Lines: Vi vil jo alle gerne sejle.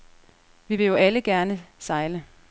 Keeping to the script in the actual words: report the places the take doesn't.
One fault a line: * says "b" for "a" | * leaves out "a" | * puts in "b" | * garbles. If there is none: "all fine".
all fine